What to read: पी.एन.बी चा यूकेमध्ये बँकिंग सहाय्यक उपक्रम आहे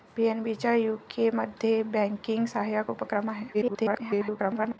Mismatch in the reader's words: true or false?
true